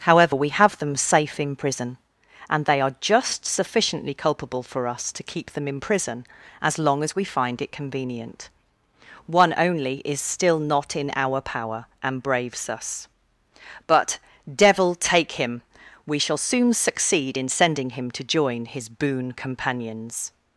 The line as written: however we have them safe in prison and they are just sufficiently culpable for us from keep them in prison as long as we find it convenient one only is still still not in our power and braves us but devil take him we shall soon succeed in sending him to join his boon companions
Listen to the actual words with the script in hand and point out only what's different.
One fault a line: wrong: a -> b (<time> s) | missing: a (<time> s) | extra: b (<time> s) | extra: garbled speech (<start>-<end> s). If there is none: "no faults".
wrong: from -> to (5.1 s)
missing: still (10.6 s)